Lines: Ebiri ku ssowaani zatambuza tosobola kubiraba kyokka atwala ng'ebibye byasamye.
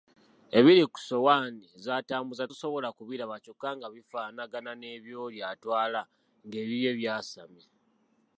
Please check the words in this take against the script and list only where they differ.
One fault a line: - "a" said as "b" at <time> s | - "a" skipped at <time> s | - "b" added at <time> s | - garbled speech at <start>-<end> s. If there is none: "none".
- "nga bifaanagana n'ebyoli" added at 3.8 s